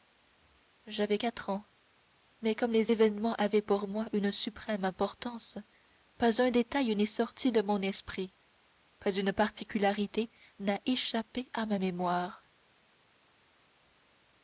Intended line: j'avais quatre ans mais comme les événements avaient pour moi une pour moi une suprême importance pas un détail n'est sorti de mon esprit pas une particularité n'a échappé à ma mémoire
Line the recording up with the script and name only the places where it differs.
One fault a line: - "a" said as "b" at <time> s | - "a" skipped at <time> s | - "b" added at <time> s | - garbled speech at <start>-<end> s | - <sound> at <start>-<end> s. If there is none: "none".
- "pour moi une" skipped at 4.3 s